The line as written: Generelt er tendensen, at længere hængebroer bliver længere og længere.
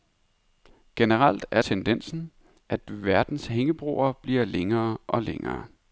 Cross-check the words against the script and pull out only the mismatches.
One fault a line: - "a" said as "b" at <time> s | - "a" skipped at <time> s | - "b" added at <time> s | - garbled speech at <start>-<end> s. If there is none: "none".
- "længere" said as "verdens" at 2.9 s